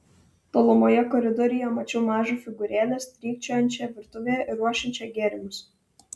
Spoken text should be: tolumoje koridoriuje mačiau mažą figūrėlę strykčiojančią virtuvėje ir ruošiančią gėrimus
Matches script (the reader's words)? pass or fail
pass